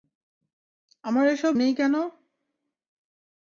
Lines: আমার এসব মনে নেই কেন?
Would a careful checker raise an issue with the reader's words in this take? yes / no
yes